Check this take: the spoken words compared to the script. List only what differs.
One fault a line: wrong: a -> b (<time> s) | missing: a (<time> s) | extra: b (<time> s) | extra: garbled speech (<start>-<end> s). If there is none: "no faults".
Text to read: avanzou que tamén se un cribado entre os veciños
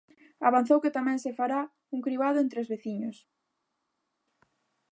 extra: fará (1.4 s)